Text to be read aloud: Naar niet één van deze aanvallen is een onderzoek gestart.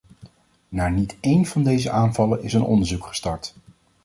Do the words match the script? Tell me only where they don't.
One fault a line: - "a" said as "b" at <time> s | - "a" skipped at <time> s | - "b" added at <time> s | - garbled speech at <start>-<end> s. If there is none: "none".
none